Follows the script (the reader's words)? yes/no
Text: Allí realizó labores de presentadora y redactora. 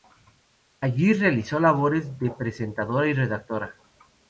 yes